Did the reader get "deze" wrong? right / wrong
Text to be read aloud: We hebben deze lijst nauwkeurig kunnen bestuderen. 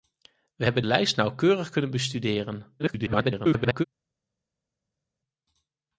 wrong